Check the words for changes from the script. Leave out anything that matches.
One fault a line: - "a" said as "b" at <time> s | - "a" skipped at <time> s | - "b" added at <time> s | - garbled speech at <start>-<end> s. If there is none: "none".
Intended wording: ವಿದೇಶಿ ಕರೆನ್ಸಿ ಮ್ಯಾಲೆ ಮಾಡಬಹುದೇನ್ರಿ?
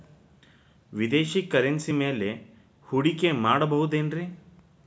- "ಹೂಡಿಕೆ" added at 2.9 s